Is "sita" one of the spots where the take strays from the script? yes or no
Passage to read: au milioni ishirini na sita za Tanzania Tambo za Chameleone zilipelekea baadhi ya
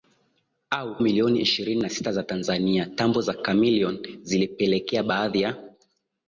no